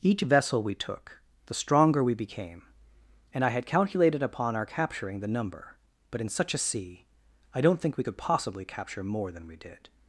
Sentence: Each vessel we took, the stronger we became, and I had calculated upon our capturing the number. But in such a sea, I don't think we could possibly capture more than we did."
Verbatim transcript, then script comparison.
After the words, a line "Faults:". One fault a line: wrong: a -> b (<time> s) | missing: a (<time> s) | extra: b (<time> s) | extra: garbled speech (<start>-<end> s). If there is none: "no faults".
Each vessel we took, the stronger we became, and I had calculated upon our capturing the number. But in such a sea, I don't think we could possibly capture more than we did."
Faults:
no faults